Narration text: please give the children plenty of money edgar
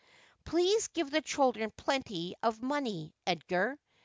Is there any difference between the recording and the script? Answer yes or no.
no